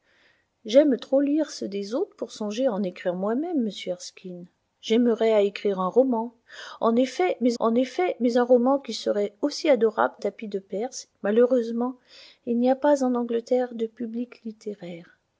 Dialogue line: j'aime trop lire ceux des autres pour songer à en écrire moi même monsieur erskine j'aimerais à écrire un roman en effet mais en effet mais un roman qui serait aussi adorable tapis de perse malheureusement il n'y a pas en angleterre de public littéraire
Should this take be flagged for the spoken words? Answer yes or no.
no